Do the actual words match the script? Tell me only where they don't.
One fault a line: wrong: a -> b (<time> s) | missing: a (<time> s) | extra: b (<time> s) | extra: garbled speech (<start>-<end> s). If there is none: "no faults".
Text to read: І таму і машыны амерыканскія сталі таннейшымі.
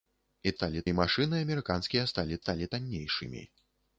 wrong: таму -> сталі (0.6 s)
extra: сталі (2.4 s)